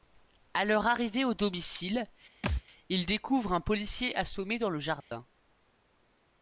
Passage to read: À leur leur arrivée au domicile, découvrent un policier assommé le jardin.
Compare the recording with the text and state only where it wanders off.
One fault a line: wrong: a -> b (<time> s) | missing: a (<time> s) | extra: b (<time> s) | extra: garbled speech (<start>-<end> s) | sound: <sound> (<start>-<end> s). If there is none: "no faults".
missing: leur (0.9 s)
sound: thud (2.4-2.6 s)
extra: ils (2.9 s)
extra: dans (4.6 s)
sound: dropout (5.0-5.1 s)